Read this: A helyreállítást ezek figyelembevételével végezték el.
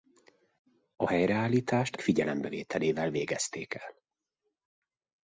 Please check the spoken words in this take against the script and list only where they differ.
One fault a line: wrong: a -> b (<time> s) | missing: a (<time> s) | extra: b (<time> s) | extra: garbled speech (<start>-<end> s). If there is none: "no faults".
missing: ezek (2.0 s)